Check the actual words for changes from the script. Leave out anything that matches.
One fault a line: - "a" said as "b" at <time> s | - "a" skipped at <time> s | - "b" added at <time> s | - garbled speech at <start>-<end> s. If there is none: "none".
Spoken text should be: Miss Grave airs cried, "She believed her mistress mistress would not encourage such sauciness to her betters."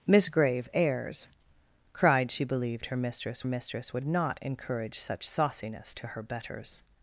none